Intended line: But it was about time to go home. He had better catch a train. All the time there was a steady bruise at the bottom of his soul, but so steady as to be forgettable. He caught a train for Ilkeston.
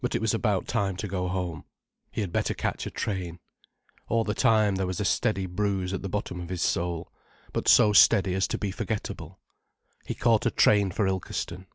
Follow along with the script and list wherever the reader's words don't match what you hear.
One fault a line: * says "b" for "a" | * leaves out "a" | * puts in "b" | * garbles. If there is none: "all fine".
all fine